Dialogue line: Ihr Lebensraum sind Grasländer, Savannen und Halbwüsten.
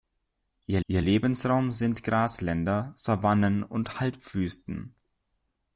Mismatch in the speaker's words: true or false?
true